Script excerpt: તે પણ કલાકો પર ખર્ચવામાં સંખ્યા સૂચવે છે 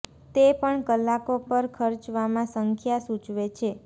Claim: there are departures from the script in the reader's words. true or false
false